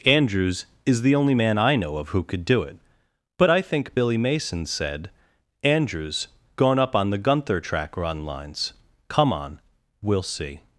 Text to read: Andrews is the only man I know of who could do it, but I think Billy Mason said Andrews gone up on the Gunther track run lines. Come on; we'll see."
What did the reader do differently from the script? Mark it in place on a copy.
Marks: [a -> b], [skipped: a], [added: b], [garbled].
Andrews is the only man I know of who could do it, but I think Billy Mason said Andrews gone up on the Gunther track run lines. Come on; we'll see."